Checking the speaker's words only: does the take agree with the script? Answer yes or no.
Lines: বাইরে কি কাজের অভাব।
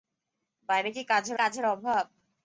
no